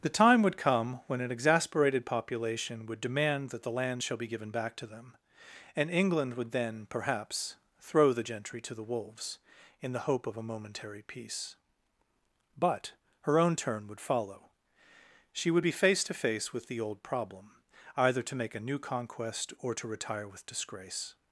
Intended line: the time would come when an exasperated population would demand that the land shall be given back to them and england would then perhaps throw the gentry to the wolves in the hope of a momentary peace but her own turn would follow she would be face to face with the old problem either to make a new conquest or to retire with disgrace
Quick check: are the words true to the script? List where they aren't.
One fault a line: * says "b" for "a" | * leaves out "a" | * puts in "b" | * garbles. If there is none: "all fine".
all fine